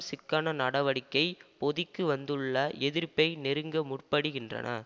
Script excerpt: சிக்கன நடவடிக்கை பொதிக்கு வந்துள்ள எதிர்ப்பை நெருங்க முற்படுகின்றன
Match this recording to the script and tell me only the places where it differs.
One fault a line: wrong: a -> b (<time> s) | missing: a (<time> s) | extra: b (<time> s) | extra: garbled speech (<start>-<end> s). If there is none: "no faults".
no faults